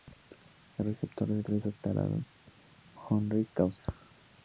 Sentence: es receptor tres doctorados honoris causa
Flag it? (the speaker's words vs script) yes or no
yes